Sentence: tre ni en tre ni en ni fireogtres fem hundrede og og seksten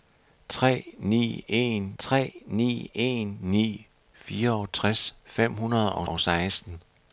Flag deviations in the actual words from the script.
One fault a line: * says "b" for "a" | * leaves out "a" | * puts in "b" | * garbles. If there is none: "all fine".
all fine